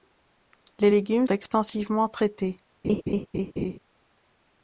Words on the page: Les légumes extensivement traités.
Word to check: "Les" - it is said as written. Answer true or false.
true